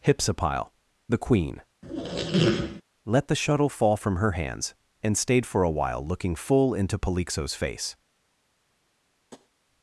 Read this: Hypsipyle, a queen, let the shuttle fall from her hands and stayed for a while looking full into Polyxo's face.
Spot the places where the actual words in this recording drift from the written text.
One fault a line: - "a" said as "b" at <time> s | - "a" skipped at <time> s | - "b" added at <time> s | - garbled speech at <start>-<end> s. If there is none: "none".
- "a" said as "the" at 1.1 s